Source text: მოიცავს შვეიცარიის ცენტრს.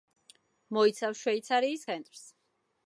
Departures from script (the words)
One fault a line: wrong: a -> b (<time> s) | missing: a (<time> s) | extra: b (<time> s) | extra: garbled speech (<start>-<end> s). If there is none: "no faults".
no faults